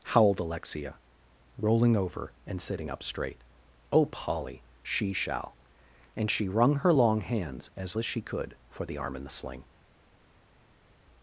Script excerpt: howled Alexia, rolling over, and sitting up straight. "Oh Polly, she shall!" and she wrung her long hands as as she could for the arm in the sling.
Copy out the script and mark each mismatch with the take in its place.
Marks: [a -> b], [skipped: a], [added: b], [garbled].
howled Alexia, rolling over, and sitting up straight. "Oh Polly, she shall!" and she wrung her long hands as as she could for the arm in the sling.